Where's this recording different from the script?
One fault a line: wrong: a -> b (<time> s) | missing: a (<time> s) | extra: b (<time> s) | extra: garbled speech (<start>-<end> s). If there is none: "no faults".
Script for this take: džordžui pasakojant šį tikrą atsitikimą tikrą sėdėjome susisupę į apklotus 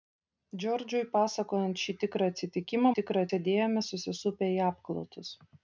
no faults